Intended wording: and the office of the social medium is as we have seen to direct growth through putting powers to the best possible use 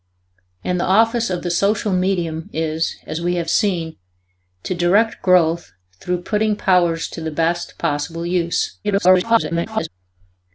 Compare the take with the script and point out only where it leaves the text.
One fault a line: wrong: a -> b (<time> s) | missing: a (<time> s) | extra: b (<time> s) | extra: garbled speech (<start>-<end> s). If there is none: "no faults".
extra: garbled speech (8.8-9.9 s)